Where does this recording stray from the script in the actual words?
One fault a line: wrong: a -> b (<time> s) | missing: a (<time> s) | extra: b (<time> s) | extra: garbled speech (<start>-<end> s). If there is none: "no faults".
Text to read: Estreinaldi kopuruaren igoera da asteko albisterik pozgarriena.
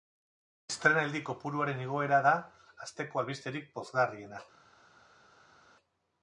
no faults